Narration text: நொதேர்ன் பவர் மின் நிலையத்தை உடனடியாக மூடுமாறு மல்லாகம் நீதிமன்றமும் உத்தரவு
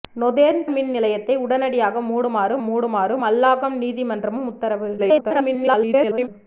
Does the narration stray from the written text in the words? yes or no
yes